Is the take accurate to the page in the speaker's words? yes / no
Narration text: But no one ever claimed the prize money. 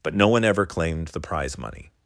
yes